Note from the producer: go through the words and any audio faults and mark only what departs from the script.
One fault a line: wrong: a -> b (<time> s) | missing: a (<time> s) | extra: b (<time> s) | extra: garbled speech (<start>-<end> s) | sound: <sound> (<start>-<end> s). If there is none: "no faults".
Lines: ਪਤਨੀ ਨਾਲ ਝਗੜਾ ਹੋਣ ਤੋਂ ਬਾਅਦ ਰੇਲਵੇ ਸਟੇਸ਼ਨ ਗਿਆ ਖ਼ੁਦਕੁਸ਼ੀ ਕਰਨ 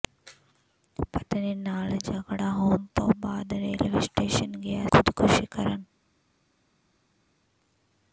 no faults